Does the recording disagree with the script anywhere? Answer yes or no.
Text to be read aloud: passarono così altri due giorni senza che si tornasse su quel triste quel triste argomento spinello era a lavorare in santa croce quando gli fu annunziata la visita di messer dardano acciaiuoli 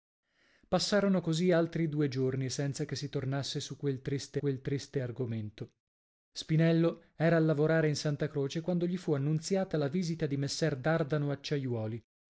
no